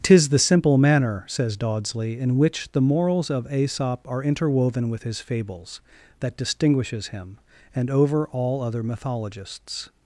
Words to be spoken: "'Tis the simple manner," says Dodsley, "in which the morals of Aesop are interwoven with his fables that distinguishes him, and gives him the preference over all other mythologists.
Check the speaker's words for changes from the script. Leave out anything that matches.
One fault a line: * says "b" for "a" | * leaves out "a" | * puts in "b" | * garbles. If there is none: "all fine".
* leaves out "gives him the preference"